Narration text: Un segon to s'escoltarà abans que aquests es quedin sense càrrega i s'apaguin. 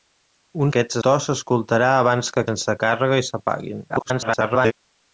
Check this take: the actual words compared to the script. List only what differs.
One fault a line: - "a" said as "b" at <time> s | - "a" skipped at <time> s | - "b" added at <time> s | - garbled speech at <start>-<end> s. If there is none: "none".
- "segon" said as "aquests" at 0.7 s
- "aquests es quedin" skipped at 2.4 s
- garbled speech at 3.9-4.7 s